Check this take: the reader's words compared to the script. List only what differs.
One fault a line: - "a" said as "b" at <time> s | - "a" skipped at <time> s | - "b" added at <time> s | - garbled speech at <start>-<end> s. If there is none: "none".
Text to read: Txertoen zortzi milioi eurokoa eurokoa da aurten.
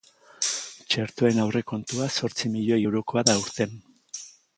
- "aurrekontua" added at 1.4 s
- "eurokoa" skipped at 3.2 s